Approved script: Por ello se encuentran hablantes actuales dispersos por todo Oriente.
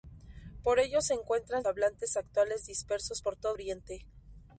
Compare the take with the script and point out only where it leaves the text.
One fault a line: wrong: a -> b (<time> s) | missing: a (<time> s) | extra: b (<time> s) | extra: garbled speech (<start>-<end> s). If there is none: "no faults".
no faults